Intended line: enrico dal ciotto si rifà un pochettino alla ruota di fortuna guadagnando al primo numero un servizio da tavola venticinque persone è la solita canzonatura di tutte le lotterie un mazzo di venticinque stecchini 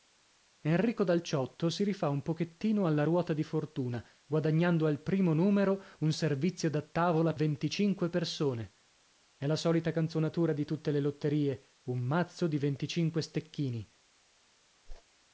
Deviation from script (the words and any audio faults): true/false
true